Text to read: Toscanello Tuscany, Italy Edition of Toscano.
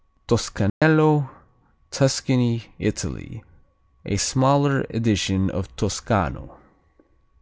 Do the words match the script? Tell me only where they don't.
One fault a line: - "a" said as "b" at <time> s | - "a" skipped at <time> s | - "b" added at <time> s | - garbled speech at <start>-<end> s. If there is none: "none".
- "A smaller" added at 4.0 s